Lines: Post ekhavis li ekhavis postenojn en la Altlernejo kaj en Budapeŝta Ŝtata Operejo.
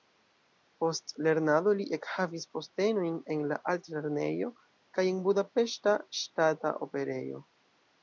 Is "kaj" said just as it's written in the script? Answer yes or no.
yes